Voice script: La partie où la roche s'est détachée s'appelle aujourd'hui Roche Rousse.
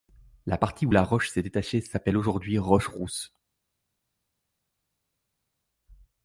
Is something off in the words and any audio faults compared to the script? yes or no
no